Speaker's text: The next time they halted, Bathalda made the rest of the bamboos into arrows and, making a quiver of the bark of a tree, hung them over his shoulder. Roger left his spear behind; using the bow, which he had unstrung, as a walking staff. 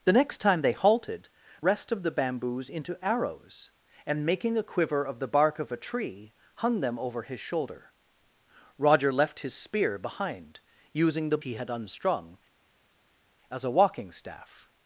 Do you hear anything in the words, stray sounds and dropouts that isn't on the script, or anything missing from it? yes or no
yes